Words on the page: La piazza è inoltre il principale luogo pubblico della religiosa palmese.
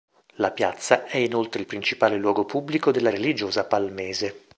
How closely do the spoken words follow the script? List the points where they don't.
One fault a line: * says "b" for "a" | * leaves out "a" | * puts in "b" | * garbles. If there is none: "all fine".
all fine